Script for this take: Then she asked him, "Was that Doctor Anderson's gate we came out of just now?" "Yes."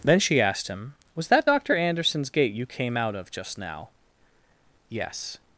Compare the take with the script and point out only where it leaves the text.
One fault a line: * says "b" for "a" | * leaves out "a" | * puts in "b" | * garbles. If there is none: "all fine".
* says "you" for "we"